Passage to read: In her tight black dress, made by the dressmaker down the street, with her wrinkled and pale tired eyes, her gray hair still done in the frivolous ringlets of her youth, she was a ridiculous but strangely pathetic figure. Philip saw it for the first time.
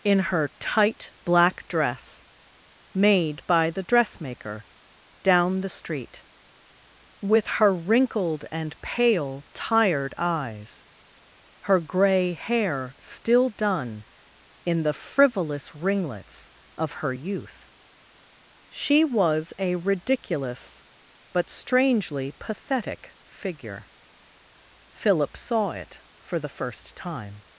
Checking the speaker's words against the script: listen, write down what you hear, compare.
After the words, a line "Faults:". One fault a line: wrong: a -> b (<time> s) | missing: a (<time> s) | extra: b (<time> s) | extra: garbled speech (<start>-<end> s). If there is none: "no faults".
In her tight black dress, made by the dressmaker down the street, with her wrinkled and pale tired eyes, her gray hair still done in the frivolous ringlets of her youth, she was a ridiculous but strangely pathetic figure. Philip saw it for the first time.
Faults:
no faults